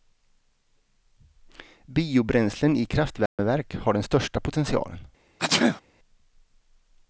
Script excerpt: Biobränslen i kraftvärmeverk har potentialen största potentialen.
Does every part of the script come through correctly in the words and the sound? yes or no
no